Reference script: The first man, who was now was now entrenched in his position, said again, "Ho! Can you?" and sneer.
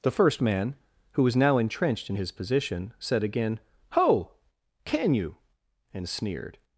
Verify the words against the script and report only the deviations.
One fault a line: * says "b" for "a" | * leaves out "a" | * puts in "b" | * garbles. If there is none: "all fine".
* leaves out "was now"
* says "sneered" for "sneer"